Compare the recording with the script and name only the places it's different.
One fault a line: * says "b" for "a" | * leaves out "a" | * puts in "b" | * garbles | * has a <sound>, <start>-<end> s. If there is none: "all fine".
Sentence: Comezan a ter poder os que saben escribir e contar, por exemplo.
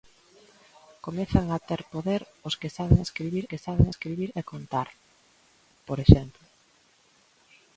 * puts in "que saben escribir"